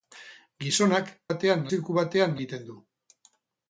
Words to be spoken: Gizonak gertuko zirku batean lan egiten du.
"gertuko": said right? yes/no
no